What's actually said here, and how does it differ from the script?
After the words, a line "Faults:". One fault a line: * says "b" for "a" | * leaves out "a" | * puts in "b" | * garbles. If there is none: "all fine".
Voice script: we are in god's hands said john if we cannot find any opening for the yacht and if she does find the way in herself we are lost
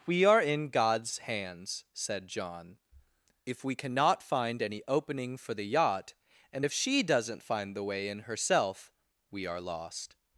we are in god's hands said john if we cannot find any opening for the yacht and if she doesn't find the way in herself we are lost
Faults:
* says "doesn't" for "does"